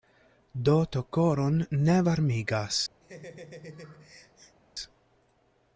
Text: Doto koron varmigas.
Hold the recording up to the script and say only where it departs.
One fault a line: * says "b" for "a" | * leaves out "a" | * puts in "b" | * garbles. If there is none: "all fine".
* puts in "ne"